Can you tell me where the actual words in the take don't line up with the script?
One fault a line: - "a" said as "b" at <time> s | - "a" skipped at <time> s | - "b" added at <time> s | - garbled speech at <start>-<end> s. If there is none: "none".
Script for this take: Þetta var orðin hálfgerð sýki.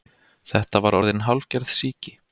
none